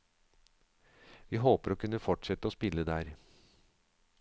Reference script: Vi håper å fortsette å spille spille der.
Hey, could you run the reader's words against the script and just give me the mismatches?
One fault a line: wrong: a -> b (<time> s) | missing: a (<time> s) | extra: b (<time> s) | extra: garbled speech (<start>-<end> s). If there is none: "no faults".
extra: kunne (1.8 s)
missing: spille (2.9 s)